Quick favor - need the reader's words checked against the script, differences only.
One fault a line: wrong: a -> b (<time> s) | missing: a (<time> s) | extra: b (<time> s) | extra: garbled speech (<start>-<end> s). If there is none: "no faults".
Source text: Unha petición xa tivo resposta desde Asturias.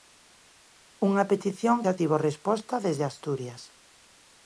no faults